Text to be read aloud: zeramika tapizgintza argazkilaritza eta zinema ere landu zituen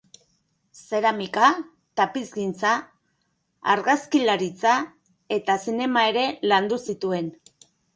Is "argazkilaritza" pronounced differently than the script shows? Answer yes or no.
no